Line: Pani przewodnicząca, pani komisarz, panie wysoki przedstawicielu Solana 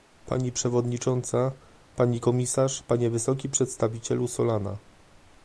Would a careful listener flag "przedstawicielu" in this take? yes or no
no